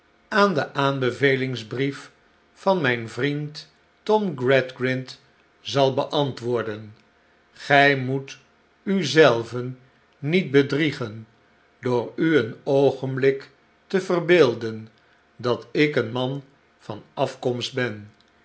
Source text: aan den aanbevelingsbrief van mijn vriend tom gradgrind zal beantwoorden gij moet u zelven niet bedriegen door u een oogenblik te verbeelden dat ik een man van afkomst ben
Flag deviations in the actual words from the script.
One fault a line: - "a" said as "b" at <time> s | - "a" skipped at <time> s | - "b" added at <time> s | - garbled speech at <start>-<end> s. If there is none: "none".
none